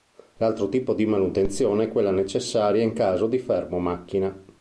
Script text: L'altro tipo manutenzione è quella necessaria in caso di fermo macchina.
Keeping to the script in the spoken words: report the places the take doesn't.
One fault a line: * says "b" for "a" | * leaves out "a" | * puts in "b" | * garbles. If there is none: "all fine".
* puts in "di"